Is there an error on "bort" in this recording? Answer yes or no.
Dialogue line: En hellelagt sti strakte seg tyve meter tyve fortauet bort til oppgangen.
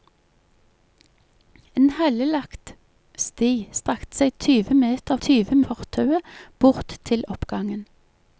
no